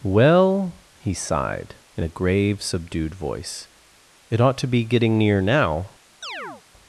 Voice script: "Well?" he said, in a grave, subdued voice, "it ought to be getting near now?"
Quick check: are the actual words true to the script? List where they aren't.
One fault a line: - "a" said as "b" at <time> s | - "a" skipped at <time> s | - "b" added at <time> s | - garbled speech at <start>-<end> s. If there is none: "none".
- "said" said as "sighed" at 1.1 s